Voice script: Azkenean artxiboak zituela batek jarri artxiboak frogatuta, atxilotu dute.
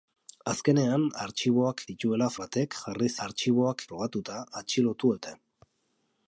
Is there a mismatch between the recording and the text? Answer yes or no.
no